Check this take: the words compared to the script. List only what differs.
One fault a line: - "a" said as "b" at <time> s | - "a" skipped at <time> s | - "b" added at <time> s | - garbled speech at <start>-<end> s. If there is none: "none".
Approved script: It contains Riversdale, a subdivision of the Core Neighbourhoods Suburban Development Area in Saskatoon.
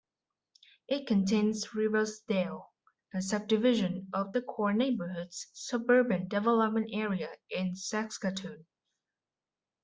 none